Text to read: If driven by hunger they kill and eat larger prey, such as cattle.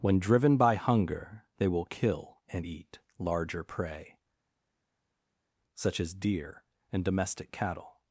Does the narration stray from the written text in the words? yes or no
yes